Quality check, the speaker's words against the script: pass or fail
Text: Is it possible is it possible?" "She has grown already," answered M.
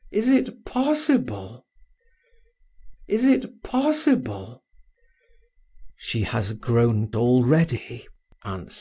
pass